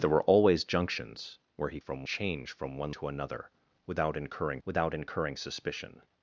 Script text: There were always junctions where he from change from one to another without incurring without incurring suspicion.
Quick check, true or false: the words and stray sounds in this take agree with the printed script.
true